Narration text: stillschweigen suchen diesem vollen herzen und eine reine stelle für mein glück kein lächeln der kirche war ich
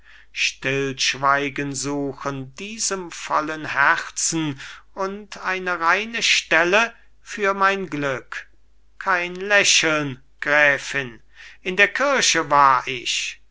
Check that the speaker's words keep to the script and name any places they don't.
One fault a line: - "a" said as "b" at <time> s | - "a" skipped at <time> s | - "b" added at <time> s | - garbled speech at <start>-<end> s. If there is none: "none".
- "gräfin in" added at 10.4 s